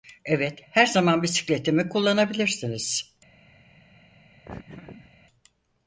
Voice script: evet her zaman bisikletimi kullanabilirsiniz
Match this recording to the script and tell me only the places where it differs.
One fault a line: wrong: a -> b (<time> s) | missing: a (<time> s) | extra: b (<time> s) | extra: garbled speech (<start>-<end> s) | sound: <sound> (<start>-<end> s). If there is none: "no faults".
sound: laugh (4.5-5.1 s)